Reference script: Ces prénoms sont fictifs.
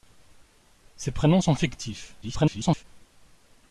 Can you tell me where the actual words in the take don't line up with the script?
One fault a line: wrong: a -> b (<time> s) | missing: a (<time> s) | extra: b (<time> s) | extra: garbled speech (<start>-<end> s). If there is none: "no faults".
extra: garbled speech (2.2-2.8 s)